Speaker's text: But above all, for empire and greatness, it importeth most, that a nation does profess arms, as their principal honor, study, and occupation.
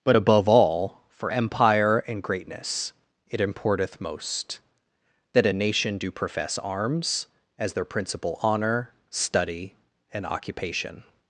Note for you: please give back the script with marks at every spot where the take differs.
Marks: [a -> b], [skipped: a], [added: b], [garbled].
But above all, for empire and greatness, it importeth most, that a nation [does -> do] profess arms, as their principal honor, study, and occupation.